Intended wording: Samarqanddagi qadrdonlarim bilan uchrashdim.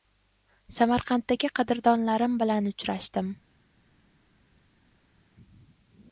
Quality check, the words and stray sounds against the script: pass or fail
pass